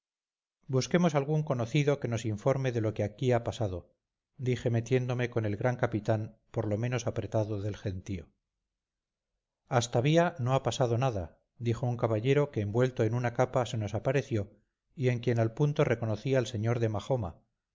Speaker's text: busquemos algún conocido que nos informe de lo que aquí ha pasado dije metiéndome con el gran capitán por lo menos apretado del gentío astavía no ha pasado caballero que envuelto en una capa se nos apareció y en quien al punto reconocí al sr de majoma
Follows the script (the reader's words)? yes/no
no